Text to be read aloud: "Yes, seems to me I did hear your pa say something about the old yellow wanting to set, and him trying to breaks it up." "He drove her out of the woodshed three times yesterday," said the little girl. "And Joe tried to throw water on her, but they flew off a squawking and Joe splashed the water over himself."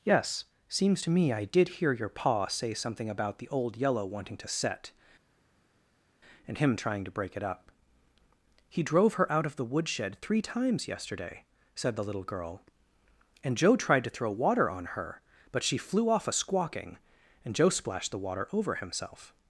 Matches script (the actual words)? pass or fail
fail